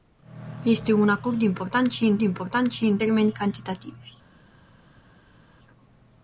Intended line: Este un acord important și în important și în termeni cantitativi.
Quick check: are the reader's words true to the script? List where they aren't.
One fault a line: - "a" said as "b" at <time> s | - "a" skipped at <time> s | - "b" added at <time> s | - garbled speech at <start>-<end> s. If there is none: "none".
none